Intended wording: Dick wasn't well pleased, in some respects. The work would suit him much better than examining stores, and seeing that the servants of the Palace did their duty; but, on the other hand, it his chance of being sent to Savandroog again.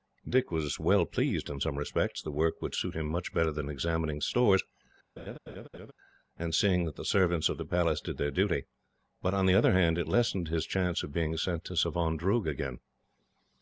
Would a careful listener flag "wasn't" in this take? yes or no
yes